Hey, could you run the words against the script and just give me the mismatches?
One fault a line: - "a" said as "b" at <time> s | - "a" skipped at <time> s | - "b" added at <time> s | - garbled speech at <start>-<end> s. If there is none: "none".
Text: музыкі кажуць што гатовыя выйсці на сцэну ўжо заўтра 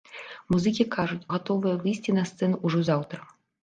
- "што" skipped at 1.3 s